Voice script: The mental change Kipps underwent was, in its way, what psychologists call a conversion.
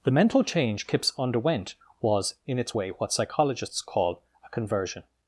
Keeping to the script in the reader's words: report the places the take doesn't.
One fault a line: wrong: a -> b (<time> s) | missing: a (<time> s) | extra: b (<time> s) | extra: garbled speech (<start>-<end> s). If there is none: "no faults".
no faults